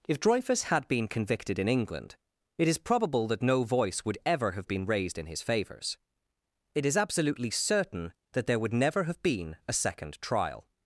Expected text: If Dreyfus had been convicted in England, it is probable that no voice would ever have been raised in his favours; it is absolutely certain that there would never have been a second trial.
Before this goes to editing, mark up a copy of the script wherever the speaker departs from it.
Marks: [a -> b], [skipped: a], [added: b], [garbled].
If Dreyfus had been convicted in England, it is probable that no voice would ever have been raised in his favours; it is absolutely certain that there would never have been a second trial.